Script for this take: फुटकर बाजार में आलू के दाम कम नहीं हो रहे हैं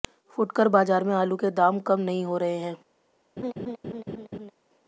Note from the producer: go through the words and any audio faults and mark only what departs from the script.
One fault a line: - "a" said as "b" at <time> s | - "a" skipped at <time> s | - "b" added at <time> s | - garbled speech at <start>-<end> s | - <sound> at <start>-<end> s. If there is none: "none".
- laugh at 3.4-4.5 s